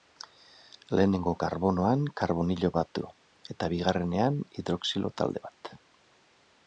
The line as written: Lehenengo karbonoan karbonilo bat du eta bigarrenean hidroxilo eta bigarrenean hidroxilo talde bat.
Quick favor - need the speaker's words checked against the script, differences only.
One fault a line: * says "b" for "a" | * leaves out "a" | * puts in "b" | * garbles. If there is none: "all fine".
* leaves out "eta bigarrenean hidroxilo"